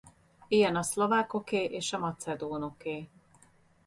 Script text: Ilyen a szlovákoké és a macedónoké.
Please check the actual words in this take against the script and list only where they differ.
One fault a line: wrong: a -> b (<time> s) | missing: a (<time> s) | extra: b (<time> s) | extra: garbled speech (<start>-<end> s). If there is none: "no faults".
no faults